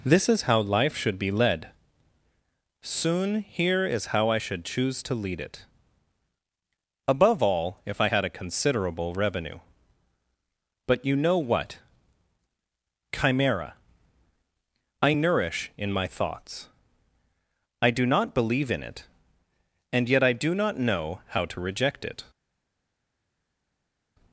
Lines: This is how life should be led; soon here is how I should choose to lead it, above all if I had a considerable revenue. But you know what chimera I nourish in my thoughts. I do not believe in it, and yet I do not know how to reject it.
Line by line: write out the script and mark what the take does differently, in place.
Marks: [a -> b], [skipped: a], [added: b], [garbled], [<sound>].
This is how life should be led; soon here is how I should choose to lead it, above all if I had a considerable revenue. But you know what chimera I nourish in my thoughts. I do not believe in it, and yet I do not know how to reject it.